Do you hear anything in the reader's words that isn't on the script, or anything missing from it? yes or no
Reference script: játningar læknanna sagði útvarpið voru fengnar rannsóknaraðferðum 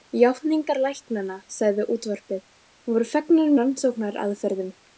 no